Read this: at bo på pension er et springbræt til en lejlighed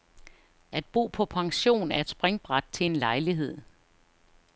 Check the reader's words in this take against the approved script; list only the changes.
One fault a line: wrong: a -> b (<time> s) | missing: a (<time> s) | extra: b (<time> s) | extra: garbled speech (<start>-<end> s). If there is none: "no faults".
no faults